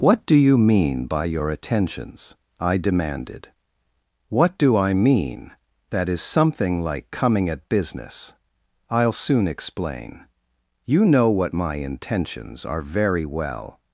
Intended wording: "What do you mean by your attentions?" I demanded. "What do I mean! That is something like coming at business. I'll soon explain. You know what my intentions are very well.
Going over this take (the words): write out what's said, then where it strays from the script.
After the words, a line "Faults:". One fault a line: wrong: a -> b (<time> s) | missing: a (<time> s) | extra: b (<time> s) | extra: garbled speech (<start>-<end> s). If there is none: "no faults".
"What do you mean by your attentions?" I demanded. "What do I mean! That is something like coming at business. I'll soon explain. You know what my intentions are very well.
Faults:
no faults